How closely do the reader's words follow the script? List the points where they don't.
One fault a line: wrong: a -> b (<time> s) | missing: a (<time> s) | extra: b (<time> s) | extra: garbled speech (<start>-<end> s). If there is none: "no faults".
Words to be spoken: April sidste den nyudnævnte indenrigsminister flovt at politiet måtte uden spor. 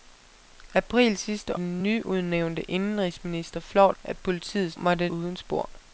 no faults